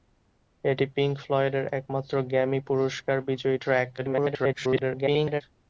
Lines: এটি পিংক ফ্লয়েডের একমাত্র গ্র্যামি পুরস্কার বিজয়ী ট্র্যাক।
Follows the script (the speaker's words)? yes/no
no